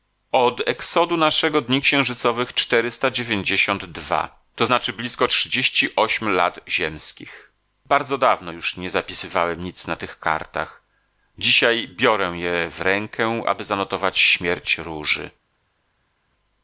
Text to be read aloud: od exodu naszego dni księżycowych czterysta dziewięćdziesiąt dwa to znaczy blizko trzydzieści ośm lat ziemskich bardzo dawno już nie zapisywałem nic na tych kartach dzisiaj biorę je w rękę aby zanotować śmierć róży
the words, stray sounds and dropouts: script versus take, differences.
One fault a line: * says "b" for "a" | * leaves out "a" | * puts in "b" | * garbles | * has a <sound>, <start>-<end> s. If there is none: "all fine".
all fine